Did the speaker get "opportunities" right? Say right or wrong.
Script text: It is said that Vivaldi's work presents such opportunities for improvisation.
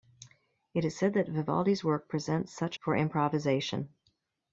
wrong